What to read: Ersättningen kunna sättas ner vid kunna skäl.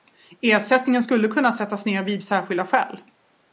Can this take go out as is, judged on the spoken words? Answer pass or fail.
fail